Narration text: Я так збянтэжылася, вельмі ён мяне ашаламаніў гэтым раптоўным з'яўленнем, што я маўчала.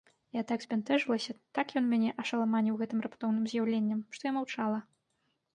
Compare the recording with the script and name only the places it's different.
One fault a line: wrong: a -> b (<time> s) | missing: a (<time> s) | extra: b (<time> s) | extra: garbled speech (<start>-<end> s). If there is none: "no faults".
wrong: вельмі -> так (1.6 s)